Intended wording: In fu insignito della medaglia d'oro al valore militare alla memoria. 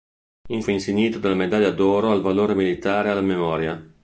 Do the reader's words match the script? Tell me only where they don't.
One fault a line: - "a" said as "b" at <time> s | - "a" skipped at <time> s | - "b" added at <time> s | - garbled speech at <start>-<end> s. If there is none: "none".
none